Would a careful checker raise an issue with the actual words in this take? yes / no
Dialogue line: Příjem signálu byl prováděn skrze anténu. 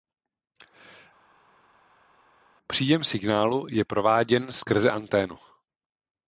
yes